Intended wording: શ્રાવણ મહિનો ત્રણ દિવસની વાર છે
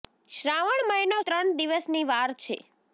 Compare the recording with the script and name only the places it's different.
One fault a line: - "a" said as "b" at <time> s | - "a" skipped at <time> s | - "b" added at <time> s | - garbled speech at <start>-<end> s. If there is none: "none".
none